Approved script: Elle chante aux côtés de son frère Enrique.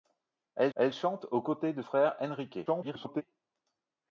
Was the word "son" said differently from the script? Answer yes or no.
yes